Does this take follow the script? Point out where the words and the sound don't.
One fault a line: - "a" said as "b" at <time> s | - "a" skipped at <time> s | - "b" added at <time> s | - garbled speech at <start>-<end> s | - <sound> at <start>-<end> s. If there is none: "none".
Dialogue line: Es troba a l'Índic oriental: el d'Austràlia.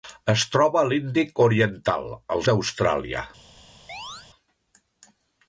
- chirp at 3.9-4.3 s